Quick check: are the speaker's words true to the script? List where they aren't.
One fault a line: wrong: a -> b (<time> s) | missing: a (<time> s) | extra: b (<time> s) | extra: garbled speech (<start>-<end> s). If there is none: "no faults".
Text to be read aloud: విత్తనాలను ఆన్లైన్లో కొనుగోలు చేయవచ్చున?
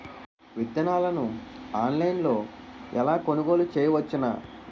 extra: ఎలా (2.9 s)